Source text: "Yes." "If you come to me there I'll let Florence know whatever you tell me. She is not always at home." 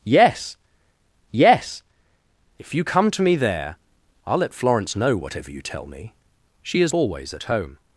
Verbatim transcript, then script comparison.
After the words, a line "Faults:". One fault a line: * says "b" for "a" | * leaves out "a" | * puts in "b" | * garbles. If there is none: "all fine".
"Yes yes." "If you come to me there I'll let Florence know whatever you tell me. She is always at home."
Faults:
* puts in "yes"
* leaves out "not"